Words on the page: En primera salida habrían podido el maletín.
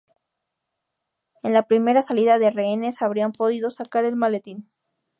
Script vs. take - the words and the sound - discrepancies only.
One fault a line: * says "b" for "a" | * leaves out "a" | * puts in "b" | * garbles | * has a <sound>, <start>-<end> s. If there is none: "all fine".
* puts in "la"
* puts in "de rehenes"
* puts in "sacar"